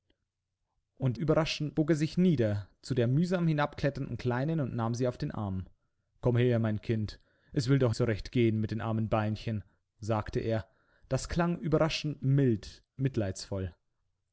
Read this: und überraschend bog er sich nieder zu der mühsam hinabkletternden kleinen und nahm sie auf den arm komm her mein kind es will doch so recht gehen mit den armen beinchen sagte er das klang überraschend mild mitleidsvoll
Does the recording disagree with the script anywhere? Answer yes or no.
no